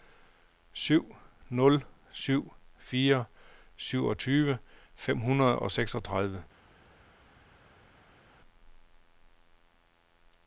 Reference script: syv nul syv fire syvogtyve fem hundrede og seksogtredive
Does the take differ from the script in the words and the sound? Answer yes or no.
no